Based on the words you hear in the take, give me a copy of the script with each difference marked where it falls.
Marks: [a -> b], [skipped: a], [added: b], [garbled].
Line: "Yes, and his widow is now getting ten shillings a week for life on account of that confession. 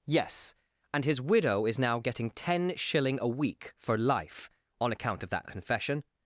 "Yes, and his widow is now getting ten [shillings -> shilling] a week for life on account of that confession.